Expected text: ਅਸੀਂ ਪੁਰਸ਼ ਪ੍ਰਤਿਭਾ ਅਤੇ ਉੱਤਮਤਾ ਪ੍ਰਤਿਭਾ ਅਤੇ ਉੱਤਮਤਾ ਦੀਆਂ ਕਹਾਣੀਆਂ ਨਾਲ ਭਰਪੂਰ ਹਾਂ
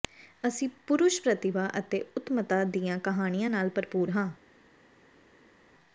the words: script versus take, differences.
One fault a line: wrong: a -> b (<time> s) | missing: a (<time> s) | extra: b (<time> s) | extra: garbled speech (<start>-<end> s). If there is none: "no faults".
missing: ਪ੍ਰਤਿਭਾ ਅਤੇ ਉੱਤਮਤਾ (2.6 s)